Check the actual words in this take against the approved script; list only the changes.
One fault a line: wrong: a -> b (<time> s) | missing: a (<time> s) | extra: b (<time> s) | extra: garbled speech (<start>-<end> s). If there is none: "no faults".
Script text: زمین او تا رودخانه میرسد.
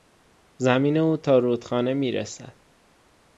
no faults